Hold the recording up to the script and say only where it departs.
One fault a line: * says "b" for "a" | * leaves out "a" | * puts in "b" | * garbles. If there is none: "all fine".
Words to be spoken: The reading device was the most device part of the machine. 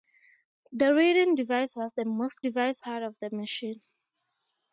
all fine